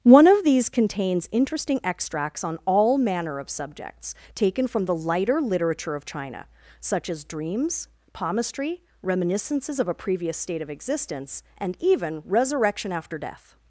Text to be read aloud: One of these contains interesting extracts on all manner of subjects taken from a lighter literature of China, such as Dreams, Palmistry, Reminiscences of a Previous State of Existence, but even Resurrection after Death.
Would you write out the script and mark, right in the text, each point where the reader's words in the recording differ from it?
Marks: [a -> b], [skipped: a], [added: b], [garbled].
One of these contains interesting extracts on all manner of subjects taken from [a -> the] lighter literature of China, such as Dreams, Palmistry, Reminiscences of a Previous State of Existence, [but -> and] even Resurrection after Death.